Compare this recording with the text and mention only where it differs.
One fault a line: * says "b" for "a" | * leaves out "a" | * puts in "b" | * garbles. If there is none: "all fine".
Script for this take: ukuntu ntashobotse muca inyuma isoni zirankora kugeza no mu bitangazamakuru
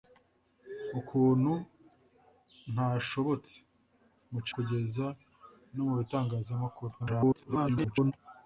* leaves out "inyuma isoni zirankora"
* garbles